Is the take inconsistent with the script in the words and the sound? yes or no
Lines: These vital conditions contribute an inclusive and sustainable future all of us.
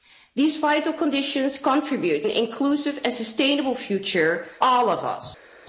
no